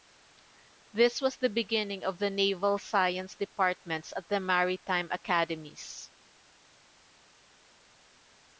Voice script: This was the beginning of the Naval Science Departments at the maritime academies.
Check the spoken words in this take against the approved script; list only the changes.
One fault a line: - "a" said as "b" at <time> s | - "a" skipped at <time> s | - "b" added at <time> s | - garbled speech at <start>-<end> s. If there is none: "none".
none